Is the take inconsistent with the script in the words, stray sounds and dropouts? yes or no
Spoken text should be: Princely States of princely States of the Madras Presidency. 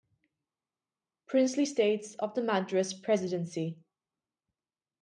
yes